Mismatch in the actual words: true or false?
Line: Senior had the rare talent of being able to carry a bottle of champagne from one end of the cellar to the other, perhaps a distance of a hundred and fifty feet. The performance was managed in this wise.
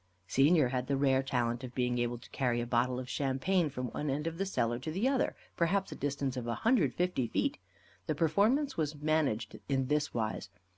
false